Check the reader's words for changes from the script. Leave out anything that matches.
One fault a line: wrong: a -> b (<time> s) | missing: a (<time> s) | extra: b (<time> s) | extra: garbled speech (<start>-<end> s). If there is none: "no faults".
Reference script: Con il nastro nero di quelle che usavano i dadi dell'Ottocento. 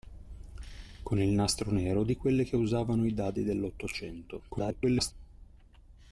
extra: garbled speech (4.5-5.1 s)